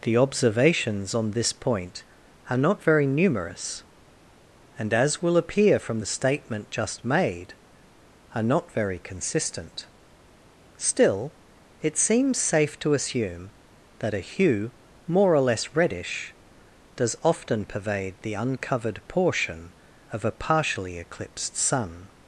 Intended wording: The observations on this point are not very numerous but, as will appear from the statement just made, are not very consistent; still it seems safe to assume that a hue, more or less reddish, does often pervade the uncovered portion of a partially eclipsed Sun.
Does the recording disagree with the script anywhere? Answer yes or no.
yes